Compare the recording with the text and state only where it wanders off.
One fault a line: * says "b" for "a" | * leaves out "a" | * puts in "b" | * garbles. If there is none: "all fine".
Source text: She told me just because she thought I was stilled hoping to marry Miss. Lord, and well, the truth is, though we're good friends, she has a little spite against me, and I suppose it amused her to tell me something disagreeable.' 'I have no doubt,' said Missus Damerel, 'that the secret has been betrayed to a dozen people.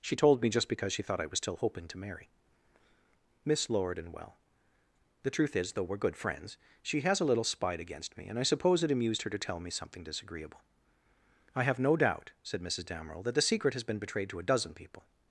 * says "still" for "stilled"